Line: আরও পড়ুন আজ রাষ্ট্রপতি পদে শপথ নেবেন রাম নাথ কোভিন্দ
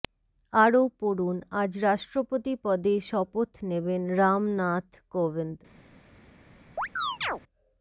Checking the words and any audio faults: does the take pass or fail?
fail